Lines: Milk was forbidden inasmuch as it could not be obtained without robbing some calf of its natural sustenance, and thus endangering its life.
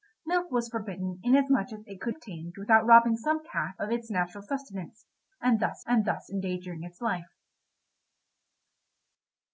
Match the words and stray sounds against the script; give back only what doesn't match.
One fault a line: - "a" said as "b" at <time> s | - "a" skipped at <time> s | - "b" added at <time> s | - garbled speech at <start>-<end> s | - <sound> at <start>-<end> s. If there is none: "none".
- "not be" skipped at 2.1 s
- "and thus" added at 5.9 s